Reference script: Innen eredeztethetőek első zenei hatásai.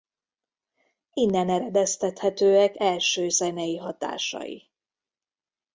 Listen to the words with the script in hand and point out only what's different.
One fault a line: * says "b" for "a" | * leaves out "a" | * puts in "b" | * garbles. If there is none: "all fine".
all fine